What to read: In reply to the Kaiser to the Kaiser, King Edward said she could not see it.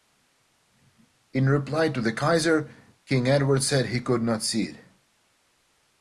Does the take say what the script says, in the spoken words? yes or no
no